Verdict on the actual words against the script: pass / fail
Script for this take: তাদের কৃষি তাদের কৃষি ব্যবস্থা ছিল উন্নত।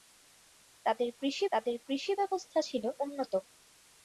pass